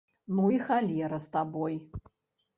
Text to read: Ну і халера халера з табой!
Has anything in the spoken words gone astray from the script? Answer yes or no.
yes